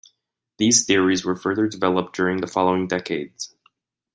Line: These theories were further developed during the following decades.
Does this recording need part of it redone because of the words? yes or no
no